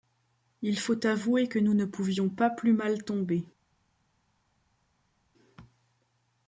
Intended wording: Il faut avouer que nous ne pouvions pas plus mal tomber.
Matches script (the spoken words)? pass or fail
pass